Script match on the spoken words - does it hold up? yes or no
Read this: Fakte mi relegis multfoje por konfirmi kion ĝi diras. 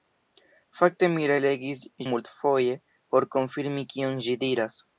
yes